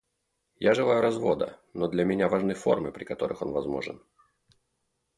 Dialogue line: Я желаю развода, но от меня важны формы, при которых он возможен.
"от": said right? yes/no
no